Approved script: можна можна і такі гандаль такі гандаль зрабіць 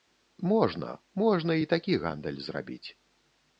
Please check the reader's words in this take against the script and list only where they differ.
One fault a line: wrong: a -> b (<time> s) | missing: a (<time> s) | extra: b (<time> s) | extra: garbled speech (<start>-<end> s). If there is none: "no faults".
missing: такі гандаль (2.4 s)